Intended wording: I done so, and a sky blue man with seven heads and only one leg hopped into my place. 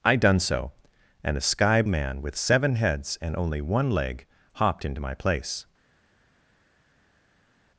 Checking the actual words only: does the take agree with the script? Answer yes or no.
no